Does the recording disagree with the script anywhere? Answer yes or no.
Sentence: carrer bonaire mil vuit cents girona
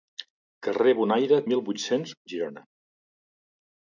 no